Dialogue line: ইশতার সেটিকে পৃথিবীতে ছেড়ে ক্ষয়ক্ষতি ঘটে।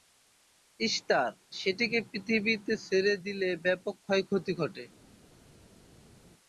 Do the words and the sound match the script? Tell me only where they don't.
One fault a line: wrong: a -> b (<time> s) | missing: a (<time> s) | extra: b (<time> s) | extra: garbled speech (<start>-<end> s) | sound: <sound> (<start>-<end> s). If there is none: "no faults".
extra: দিলে ব্যাপক (3.2 s)